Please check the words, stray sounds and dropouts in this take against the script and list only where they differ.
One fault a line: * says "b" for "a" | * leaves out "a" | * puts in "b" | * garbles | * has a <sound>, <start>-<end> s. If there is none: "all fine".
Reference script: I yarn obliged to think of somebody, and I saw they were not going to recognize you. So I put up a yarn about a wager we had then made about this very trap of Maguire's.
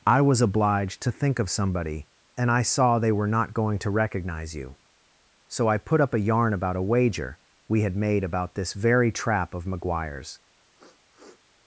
* says "was" for "yarn"
* leaves out "then"
* has a sniff, 10.7-11.4 s